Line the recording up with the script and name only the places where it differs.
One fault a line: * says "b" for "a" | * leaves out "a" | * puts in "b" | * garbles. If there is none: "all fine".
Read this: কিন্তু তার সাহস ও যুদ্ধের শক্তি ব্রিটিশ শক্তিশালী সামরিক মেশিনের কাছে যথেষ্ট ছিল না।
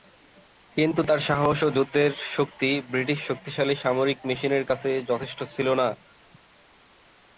all fine